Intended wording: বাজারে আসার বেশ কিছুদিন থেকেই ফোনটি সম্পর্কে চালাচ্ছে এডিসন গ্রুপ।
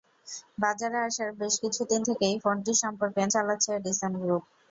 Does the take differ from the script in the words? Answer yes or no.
no